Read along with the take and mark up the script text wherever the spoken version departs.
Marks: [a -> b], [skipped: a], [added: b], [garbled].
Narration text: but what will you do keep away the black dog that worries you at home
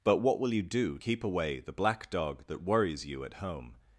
but what will you do keep away the black dog that worries you at home